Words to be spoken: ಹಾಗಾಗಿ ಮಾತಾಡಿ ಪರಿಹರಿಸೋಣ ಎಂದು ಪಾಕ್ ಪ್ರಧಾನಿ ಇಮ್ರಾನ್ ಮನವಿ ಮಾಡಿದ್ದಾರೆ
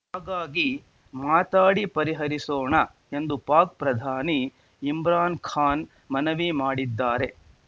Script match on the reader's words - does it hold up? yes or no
no